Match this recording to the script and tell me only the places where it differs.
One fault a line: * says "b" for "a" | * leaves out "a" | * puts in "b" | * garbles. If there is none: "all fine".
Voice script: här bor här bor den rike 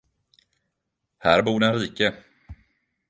* leaves out "här bor"